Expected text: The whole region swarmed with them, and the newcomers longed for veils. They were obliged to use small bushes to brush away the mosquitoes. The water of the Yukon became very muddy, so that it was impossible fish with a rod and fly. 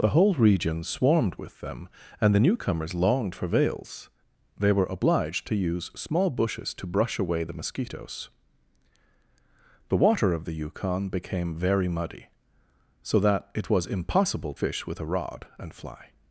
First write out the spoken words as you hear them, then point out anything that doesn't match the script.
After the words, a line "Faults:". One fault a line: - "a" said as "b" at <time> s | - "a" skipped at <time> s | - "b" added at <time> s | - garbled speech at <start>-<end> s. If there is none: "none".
The whole region swarmed with them, and the newcomers longed for veils. They were obliged to use small bushes to brush away the mosquitoes. The water of the Yukon became very muddy, so that it was impossible fish with a rod and fly.
Faults:
none